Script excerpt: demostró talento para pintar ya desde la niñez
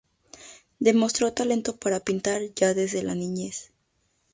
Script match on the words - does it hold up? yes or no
yes